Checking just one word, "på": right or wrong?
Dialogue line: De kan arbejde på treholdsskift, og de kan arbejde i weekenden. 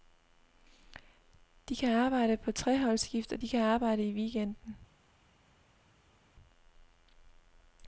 right